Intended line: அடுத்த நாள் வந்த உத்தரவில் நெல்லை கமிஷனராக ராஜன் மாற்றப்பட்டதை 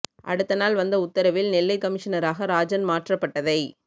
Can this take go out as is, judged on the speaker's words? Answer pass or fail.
pass